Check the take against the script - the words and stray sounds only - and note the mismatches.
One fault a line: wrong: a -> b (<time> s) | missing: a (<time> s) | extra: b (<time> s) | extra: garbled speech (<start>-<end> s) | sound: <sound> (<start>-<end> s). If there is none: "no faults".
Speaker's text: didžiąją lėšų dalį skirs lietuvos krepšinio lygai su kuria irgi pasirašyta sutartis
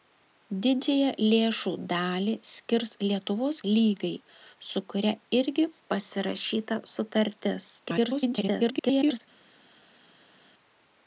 missing: krepšinio (3.6 s)
extra: garbled speech (7.8-9.2 s)